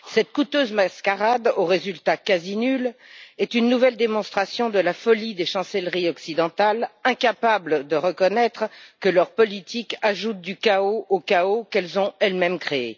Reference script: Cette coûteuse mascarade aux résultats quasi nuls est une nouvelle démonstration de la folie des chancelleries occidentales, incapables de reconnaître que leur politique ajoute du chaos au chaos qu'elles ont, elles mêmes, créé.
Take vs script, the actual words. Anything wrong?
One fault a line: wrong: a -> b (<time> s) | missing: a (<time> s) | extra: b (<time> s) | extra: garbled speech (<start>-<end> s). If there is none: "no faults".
no faults